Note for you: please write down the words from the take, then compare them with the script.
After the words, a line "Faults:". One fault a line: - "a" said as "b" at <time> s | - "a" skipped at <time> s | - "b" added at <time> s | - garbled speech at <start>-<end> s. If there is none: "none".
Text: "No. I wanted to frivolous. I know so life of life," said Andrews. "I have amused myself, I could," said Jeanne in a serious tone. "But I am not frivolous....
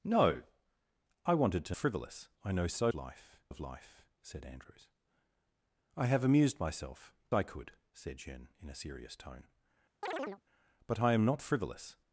"No. I wanted to frivolous. I know so life of life," said Andrews. "I have amused myself, I could," said Jeanne in a serious tone. "But I am not frivolous....
Faults:
none